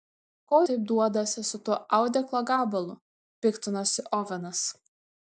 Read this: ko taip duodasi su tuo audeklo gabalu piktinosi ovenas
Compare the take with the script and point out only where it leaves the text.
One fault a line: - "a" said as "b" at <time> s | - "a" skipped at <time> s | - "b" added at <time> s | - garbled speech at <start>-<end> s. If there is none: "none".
none